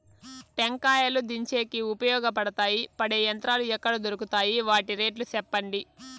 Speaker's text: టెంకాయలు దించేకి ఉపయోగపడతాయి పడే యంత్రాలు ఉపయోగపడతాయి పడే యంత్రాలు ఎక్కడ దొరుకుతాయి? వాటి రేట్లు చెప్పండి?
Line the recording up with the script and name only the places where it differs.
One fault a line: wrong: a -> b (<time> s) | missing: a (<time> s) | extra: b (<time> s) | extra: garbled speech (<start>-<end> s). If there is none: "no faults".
missing: ఉపయోగపడతాయి పడే యంత్రాలు (3.6 s)